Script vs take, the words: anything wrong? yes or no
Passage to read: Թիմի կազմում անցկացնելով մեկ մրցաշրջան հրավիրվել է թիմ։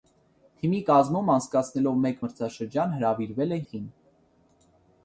no